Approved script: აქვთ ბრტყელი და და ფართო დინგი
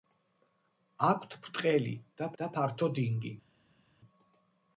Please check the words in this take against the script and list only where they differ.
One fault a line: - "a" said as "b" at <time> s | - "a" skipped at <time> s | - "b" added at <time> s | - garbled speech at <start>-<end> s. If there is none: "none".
none